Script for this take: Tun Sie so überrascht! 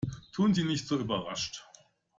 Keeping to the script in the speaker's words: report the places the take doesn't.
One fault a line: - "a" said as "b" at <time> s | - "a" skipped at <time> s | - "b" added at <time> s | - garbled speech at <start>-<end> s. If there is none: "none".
- "nicht" added at 0.6 s